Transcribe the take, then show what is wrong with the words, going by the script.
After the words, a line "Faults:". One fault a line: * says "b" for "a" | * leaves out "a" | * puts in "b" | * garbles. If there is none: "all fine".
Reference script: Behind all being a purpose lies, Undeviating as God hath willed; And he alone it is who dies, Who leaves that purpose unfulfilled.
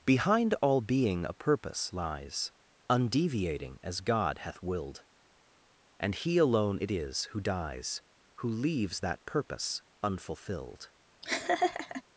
Behind all being a purpose lies, Undeviating as God hath willed; And he alone it is who dies, Who leaves that purpose unfulfilled.
Faults:
all fine